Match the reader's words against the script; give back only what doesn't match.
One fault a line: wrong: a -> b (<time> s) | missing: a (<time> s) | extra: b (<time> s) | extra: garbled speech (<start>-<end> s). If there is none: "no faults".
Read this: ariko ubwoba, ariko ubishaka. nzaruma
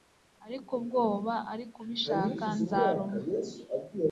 no faults